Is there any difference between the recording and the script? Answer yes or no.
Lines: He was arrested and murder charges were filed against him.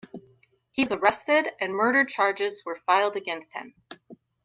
no